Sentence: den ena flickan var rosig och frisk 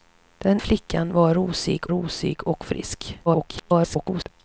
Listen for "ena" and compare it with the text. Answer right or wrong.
wrong